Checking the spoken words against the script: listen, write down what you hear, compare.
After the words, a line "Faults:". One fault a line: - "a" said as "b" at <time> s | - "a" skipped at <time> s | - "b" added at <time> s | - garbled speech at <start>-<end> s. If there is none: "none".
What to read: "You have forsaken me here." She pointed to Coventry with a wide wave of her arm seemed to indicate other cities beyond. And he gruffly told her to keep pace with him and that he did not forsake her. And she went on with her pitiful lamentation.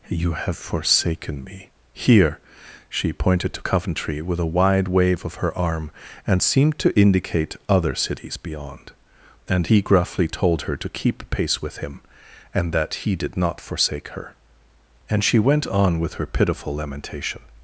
"You have forsaken me here." She pointed to Coventry with a wide wave of her arm and seemed to indicate other cities beyond. And he gruffly told her to keep pace with him and that he did not forsake her. And she went on with her pitiful lamentation.
Faults:
- "and" added at 6.2 s